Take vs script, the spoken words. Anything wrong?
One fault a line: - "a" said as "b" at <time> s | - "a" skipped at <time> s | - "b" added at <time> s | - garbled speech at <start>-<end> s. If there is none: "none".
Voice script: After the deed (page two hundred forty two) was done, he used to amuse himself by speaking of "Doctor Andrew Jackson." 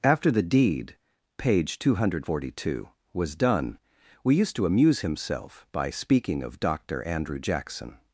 - "he" said as "we" at 4.2 s